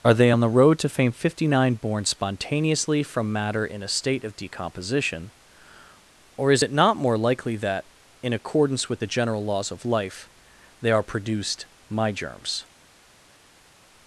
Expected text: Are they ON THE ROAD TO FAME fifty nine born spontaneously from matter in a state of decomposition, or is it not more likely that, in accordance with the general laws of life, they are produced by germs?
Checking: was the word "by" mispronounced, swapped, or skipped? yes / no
yes